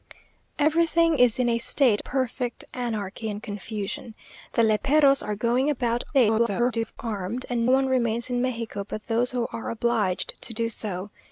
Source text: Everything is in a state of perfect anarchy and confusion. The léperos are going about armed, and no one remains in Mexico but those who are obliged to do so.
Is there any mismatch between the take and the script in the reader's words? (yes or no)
yes